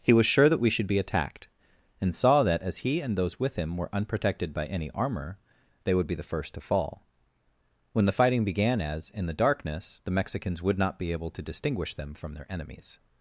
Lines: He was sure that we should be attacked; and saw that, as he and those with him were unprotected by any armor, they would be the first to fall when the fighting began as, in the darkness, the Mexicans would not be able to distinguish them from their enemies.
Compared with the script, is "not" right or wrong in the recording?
right